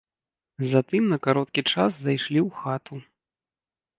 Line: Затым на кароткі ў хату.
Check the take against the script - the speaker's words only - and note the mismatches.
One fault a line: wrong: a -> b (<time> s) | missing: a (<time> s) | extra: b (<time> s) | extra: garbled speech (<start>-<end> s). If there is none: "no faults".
extra: час зайшлі (1.7 s)